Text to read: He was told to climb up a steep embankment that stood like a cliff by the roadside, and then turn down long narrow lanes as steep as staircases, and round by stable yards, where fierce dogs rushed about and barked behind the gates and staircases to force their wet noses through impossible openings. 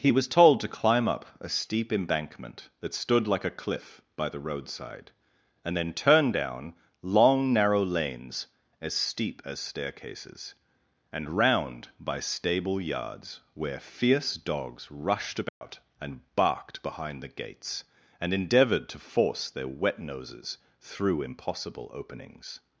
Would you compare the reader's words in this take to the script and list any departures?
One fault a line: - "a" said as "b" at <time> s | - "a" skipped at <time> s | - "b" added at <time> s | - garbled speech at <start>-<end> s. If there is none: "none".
- "staircases" said as "endeavoured" at 18.3 s